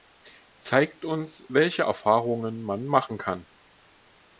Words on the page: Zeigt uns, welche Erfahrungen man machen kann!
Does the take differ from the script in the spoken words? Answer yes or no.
no